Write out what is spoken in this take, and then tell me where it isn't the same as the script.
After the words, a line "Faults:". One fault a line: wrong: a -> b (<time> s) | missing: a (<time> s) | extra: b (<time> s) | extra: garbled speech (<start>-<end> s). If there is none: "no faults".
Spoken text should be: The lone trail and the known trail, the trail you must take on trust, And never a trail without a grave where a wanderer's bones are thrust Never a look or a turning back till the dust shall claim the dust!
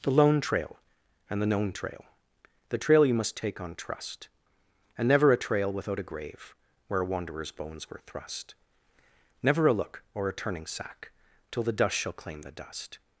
The lone trail and the known trail, the trail you must take on trust, And never a trail without a grave where a wanderer's bones were thrust Never a look or a turning sack till the dust shall claim the dust!
Faults:
wrong: are -> were (7.9 s)
wrong: back -> sack (10.7 s)